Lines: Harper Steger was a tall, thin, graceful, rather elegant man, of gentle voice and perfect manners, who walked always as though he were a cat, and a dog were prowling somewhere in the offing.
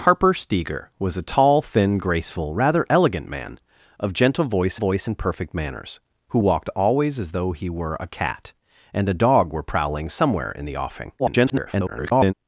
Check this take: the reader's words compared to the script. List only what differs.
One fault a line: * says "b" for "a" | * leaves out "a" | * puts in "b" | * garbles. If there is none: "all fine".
* puts in "voice"
* garbles